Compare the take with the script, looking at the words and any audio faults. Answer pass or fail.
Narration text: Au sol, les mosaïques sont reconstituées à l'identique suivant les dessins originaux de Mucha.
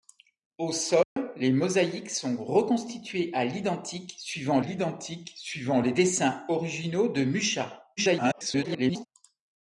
fail